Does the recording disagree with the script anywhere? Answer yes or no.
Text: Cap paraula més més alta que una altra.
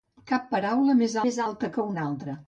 no